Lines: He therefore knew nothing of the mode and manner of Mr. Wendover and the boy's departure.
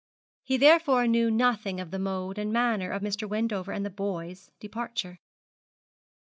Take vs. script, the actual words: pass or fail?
pass